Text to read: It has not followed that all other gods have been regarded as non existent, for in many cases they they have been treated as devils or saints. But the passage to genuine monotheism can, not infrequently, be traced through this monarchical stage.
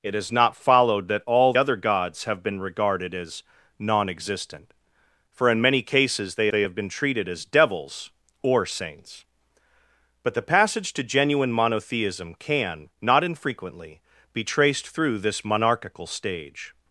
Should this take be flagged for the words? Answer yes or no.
no